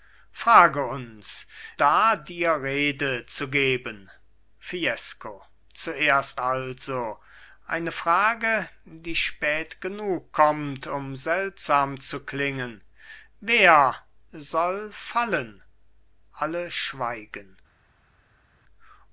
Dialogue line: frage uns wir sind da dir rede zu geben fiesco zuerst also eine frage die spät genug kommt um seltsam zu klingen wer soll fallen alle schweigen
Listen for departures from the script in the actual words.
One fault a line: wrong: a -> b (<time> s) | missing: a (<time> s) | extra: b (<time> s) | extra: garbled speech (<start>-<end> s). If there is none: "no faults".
missing: wir sind (1.4 s)